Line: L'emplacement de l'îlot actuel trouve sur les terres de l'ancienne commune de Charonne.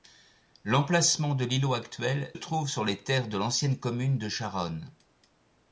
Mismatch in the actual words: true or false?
false